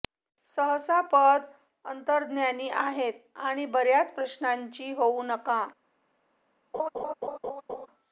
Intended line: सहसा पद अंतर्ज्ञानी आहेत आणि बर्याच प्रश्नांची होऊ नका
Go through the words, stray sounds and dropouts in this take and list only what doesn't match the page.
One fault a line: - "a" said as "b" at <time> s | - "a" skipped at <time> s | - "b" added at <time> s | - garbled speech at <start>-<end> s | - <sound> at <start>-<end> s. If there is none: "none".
- laugh at 6.7-7.9 s